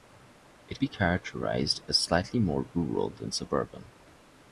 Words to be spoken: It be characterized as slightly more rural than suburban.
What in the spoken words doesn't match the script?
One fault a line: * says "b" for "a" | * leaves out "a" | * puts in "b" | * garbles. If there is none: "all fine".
all fine